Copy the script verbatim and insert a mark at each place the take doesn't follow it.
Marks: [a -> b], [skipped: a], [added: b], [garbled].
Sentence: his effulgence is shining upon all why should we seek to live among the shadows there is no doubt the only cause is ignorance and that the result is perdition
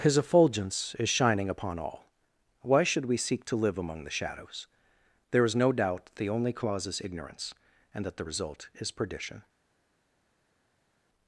his effulgence is shining upon all why should we seek to live among the shadows there is no doubt the only cause is ignorance and that the result is perdition